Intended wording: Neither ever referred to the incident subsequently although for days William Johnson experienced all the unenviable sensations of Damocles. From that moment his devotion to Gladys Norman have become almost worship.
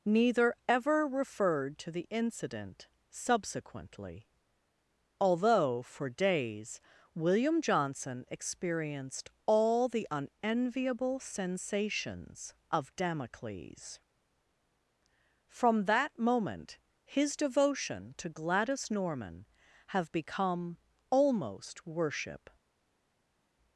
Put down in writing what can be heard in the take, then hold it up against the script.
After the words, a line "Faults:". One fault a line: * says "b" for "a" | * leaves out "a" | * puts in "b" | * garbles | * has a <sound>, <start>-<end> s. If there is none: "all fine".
Neither ever referred to the incident subsequently although for days William Johnson experienced all the unenviable sensations of Damocles. From that moment his devotion to Gladys Norman have become almost worship.
Faults:
all fine